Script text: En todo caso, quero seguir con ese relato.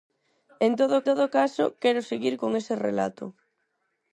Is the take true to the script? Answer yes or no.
no